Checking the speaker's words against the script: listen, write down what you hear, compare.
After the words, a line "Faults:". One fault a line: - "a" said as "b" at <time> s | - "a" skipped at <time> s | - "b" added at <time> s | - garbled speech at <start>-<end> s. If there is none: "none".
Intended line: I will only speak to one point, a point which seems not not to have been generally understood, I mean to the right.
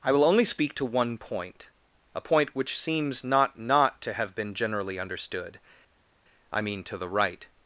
I will only speak to one point, a point which seems not not to have been generally understood, I mean to the right.
Faults:
none